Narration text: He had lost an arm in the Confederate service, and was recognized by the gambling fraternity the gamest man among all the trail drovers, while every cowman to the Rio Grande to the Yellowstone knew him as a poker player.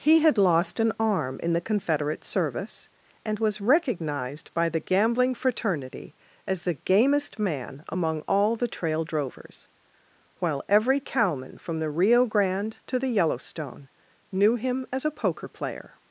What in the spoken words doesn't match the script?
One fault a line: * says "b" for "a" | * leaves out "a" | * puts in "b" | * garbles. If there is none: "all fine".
* puts in "as"
* says "from" for "to"